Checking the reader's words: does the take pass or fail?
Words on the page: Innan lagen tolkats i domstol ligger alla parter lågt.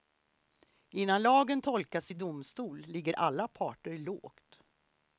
pass